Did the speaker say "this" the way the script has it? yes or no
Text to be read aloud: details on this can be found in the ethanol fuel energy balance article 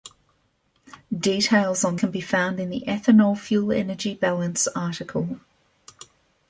no